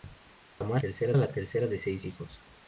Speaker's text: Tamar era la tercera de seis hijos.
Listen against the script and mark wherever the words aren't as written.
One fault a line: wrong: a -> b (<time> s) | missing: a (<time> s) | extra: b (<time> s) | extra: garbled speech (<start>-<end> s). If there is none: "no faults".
wrong: era -> tercera (0.8 s)